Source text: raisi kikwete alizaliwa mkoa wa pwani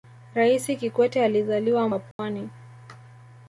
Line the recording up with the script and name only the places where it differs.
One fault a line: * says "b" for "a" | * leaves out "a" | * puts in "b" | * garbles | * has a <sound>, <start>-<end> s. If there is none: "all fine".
* leaves out "mkoa"
* has a dropout, 2.1-2.2 s